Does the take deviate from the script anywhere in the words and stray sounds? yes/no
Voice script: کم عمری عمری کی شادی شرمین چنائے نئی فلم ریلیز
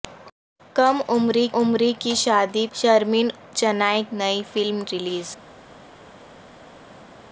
no